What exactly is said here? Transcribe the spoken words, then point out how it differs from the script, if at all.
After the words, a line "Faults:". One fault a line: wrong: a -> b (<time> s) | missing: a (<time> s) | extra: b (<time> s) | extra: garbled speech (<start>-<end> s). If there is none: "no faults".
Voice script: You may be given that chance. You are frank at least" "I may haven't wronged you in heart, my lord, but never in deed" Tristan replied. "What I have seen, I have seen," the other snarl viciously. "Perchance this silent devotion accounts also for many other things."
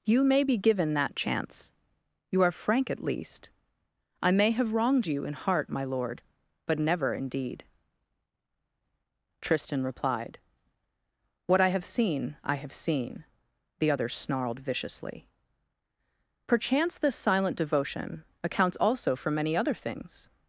You may be given that chance. You are frank at least" "I may have wronged you in heart, my lord, but never in deed" Tristan replied. "What I have seen, I have seen," the other snarled viciously. "Perchance this silent devotion accounts also for many other things."
Faults:
wrong: haven't -> have (4.5 s)
wrong: snarl -> snarled (14.1 s)